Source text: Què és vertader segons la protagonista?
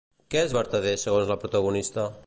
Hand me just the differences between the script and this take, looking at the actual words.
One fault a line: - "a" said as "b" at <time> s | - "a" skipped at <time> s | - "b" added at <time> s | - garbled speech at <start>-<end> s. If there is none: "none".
none